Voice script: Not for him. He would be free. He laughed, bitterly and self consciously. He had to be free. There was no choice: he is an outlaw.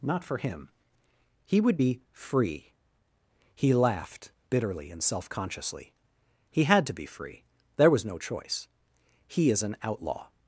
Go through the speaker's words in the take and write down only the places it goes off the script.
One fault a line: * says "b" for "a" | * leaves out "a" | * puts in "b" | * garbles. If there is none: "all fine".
all fine